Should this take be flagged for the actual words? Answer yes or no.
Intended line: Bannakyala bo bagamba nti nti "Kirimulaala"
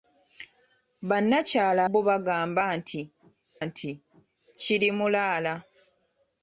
no